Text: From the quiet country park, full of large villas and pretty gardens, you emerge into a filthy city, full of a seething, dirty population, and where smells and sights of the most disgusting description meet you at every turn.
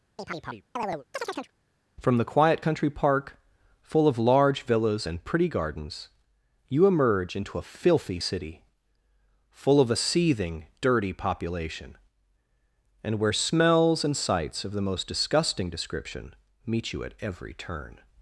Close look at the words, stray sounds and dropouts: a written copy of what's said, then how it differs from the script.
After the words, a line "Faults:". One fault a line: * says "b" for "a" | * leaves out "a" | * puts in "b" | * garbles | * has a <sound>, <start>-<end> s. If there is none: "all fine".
From the quiet country park, full of large villas and pretty gardens, you emerge into a filthy city, full of a seething, dirty population, and where smells and sights of the most disgusting description meet you at every turn.
Faults:
* has a chirp, 0.2-1.5 s